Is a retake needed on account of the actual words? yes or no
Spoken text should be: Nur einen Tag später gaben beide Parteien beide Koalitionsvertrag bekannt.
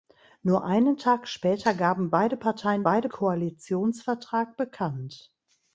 no